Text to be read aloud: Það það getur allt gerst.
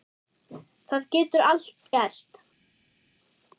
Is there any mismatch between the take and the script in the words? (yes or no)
yes